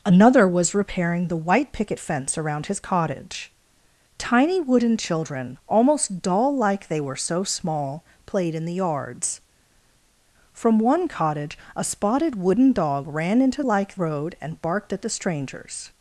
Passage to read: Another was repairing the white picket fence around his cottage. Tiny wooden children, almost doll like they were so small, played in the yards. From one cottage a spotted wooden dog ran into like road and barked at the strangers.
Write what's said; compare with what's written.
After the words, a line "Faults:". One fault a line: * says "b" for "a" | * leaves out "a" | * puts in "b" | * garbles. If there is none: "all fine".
Another was repairing the white picket fence around his cottage. Tiny wooden children, almost doll like they were so small, played in the yards. From one cottage a spotted wooden dog ran into like road and barked at the strangers.
Faults:
all fine